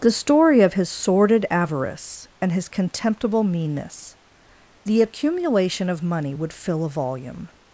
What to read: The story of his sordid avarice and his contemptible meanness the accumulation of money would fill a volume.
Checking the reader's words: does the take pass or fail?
pass